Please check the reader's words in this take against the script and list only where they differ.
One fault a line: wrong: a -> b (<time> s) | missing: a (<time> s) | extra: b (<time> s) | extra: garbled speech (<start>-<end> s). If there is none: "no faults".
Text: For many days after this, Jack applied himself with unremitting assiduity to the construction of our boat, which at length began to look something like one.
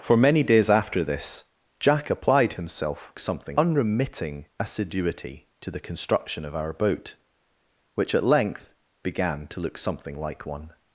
wrong: with -> something (3.2 s)